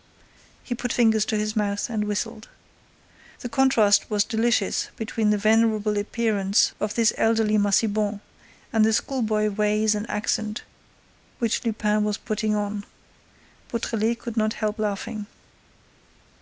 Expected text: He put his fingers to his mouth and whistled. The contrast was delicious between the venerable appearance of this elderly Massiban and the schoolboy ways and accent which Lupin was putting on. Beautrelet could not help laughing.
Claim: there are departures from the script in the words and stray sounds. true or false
true